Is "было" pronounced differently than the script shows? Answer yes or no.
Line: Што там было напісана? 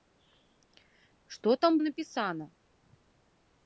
yes